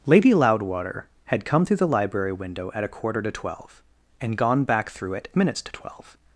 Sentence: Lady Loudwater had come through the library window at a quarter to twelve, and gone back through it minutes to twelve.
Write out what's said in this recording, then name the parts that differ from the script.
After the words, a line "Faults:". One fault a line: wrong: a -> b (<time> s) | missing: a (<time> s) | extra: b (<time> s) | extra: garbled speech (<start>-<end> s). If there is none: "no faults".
Lady Loudwater had come through the library window at a quarter to twelve, and gone back through it minutes to twelve.
Faults:
no faults